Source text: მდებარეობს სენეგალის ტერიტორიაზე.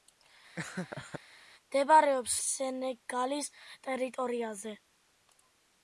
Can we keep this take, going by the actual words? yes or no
yes